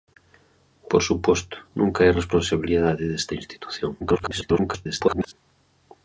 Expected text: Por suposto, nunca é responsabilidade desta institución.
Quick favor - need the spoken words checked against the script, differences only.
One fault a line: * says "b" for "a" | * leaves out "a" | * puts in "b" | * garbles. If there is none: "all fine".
* garbles